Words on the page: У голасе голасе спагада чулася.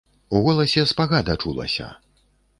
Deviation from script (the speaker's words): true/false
true